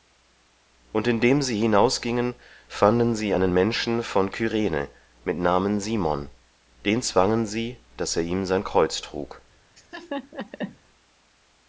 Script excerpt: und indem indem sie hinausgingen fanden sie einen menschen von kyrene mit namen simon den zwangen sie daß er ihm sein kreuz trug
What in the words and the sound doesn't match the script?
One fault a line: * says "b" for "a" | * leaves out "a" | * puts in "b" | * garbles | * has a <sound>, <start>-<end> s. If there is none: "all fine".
* leaves out "indem"
* has a laugh, 9.8-10.8 s